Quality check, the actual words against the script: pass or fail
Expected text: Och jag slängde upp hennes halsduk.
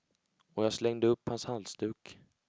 fail